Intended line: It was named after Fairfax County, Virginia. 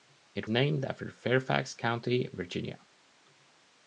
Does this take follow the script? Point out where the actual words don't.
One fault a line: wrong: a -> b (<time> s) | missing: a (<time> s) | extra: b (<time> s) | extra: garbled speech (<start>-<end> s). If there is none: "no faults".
missing: was (0.5 s)